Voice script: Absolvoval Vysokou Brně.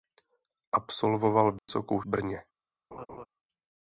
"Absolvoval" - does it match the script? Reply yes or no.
yes